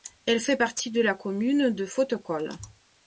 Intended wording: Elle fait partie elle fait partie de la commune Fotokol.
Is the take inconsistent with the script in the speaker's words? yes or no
yes